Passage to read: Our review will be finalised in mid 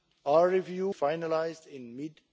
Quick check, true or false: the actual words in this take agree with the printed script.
false